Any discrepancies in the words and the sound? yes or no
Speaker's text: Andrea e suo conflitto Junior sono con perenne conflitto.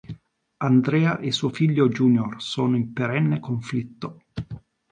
yes